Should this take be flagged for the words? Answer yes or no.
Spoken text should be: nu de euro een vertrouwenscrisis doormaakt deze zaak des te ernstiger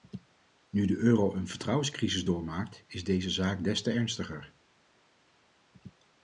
yes